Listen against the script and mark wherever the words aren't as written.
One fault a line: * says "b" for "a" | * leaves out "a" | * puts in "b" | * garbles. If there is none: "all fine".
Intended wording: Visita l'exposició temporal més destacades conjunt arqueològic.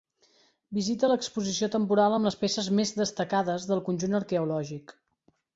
* puts in "amb les peces"
* puts in "del"